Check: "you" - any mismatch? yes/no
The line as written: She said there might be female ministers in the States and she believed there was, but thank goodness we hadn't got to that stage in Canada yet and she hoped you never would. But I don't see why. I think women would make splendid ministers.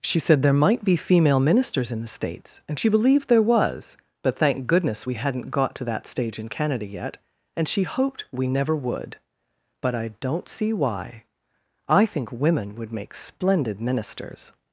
yes